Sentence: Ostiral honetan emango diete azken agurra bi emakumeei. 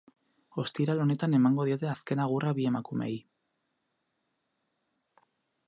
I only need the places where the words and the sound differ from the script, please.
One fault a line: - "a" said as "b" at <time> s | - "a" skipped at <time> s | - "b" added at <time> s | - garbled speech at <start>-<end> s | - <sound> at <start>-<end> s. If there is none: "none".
none